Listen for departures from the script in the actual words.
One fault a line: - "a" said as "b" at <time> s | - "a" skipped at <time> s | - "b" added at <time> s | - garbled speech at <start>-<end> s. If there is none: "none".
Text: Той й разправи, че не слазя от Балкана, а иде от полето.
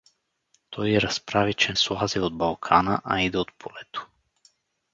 - "не" skipped at 1.7 s